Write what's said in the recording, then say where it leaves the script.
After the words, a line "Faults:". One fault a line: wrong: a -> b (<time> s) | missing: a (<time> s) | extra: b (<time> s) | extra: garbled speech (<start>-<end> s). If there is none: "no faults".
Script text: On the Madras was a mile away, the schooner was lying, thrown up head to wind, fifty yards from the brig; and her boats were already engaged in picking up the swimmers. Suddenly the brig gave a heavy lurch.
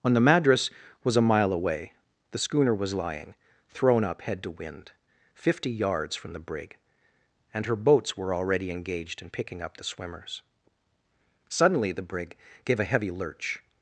On the Madras was a mile away, the schooner was lying, thrown up head to wind, fifty yards from the brig; and her boats were already engaged in picking up the swimmers. Suddenly the brig gave a heavy lurch.
Faults:
no faults